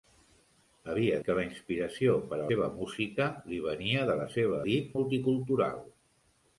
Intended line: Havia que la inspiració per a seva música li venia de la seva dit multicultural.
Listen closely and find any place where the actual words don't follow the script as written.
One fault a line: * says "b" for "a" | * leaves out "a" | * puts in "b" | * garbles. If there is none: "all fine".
all fine